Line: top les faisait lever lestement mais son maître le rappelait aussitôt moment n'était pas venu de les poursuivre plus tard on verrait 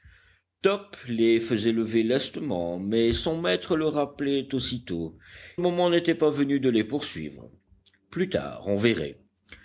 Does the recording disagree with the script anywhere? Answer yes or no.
no